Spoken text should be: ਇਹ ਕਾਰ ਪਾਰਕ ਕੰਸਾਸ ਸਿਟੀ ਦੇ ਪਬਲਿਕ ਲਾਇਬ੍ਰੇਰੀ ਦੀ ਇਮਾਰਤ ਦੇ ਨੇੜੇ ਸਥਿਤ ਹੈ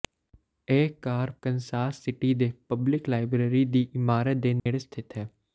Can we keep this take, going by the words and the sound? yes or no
no